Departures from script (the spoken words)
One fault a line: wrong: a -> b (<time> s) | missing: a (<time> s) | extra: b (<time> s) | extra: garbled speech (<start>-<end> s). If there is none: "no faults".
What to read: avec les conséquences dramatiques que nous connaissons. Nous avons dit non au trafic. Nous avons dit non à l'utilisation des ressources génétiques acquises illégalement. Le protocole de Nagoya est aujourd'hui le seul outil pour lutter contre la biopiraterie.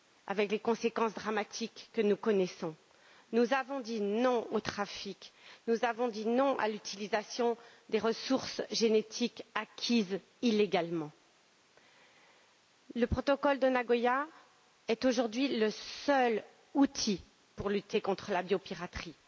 no faults